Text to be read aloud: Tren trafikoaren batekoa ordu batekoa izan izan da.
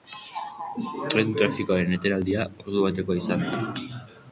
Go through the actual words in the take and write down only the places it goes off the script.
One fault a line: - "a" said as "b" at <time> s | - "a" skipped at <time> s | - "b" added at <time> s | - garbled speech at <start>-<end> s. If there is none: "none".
- "batekoa" said as "etenaldia" at 2.0 s
- "izan" skipped at 3.5 s